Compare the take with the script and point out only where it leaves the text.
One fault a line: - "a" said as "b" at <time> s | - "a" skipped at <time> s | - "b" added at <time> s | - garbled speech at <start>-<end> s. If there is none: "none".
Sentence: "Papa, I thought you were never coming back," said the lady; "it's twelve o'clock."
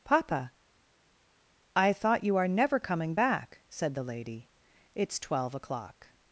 - "were" said as "are" at 2.4 s